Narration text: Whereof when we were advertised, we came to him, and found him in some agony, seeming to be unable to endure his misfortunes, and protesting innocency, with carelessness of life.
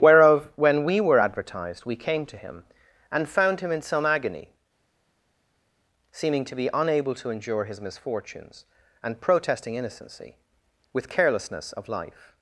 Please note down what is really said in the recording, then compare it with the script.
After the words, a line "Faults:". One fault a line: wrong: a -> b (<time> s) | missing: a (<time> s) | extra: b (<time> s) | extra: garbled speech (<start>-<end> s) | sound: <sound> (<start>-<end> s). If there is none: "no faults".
Whereof when we were advertised, we came to him, and found him in some agony, seeming to be unable to endure his misfortunes, and protesting innocency, with carelessness of life.
Faults:
no faults